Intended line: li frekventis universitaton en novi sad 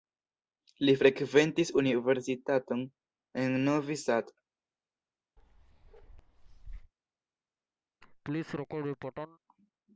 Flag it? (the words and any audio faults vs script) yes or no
yes